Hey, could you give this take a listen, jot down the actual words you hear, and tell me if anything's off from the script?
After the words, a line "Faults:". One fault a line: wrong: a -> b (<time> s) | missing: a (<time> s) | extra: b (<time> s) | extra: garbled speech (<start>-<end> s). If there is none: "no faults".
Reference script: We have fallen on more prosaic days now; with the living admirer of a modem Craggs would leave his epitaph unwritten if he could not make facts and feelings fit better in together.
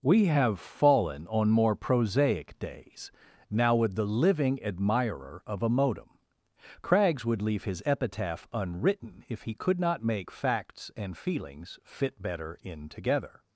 We have fallen on more prosaic days now; with the living admirer of a modem Craggs would leave his epitaph unwritten if he could not make facts and feelings fit better in together.
Faults:
no faults